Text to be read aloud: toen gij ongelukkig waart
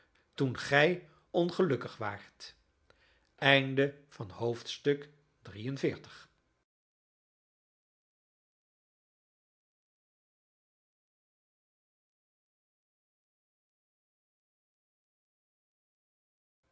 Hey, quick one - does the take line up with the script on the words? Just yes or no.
yes